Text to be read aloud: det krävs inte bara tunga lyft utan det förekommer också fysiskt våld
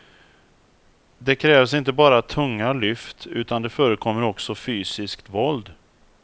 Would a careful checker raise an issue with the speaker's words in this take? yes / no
no